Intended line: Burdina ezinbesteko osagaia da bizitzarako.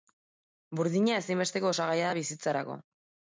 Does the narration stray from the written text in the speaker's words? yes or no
no